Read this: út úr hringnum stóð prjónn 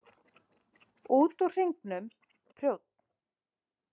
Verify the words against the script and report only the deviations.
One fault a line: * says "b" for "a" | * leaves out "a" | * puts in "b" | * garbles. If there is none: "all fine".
* leaves out "stóð"